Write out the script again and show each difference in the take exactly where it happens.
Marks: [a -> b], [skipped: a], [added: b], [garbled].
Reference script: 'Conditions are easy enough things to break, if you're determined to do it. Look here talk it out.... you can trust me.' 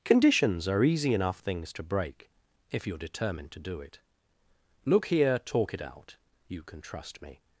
'Conditions are easy enough things to break, if you're determined to do it. Look here talk it out.... you can trust me.'